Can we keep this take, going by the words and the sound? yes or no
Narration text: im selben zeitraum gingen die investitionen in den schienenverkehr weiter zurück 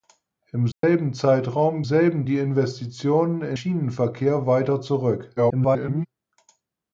no